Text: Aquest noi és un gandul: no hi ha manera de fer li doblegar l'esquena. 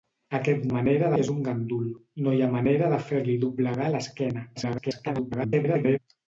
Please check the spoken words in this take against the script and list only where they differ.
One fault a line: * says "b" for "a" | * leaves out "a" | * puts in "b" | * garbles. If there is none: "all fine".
* says "manera" for "noi"
* garbles